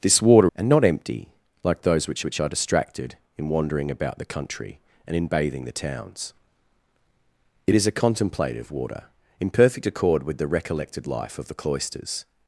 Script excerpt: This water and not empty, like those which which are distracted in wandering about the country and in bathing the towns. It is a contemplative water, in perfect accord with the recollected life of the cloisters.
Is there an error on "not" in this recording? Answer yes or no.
no